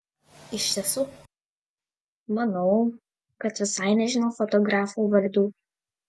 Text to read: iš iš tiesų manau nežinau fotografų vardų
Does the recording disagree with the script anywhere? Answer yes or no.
yes